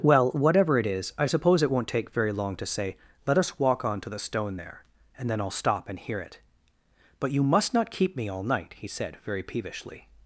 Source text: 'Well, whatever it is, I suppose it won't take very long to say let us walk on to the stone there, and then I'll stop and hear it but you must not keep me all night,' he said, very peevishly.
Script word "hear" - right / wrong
right